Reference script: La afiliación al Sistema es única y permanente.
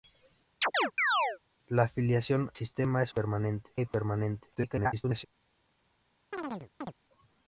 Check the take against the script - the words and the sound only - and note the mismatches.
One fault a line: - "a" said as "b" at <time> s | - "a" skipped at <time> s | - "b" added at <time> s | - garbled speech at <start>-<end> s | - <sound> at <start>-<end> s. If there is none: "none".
- chirp at 0.6-1.4 s
- "al" skipped at 2.5 s
- "única" said as "permanente" at 3.1 s
- garbled speech at 4.6-5.3 s
- chirp at 6.3-6.9 s